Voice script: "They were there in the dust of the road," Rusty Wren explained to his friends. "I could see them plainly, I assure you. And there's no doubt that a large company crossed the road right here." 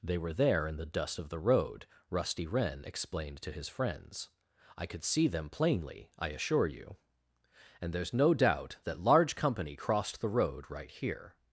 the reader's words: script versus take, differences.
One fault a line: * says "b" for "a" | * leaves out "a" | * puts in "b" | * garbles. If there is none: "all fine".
* leaves out "a"